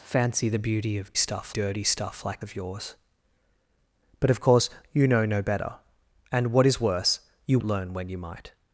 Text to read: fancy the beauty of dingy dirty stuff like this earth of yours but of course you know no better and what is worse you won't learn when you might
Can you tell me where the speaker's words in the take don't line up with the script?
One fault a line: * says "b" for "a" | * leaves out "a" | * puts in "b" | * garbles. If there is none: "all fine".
* says "stuff" for "dingy"
* leaves out "this earth"
* leaves out "won't"